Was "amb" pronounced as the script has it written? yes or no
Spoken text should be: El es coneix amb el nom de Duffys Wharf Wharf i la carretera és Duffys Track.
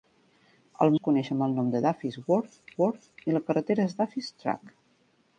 yes